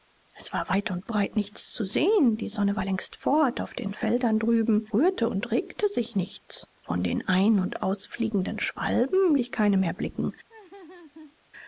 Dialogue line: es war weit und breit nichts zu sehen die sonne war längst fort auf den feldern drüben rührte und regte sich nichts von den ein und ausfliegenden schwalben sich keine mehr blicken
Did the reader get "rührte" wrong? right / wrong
right